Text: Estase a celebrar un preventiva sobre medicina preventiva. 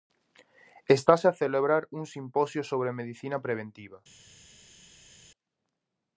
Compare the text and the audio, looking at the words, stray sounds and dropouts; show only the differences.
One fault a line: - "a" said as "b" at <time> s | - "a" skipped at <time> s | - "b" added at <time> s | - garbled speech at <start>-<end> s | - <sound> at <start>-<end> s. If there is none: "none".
- "preventiva" said as "simposio" at 2.1 s